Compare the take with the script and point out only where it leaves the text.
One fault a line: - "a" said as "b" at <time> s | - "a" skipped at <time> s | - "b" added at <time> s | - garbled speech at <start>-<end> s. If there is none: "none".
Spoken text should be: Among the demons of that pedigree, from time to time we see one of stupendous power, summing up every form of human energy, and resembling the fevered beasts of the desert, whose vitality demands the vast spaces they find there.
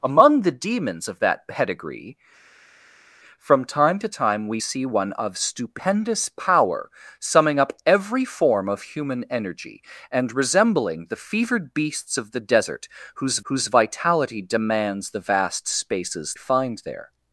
- "whose" added at 13.4 s
- "they" skipped at 16.3 s